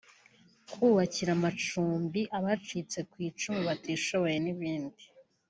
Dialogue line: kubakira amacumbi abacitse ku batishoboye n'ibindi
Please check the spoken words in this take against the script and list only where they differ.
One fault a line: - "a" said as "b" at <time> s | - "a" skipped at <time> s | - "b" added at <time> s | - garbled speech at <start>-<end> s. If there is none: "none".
- "icumu" added at 3.3 s